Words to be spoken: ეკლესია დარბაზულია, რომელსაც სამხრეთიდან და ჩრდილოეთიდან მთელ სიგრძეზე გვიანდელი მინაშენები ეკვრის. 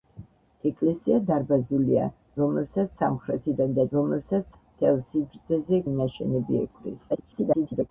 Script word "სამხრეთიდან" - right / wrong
right